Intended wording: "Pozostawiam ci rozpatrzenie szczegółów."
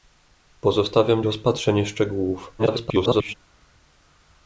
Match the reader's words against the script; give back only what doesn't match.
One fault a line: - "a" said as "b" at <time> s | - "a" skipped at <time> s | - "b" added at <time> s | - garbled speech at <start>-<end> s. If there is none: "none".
- "ci" skipped at 1.2 s
- garbled speech at 2.6-3.3 s